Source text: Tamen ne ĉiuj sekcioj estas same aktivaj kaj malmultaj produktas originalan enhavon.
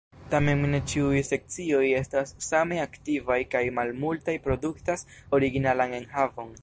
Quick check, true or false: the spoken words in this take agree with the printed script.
true